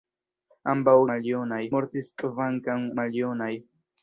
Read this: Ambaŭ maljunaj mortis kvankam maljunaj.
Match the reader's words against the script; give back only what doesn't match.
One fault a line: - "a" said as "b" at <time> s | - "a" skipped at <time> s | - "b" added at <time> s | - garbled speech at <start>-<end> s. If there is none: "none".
none